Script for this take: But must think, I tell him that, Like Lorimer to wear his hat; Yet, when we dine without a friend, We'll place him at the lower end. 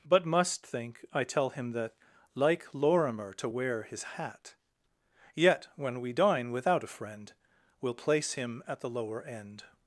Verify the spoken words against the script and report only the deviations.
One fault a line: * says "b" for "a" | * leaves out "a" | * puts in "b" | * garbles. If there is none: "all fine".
all fine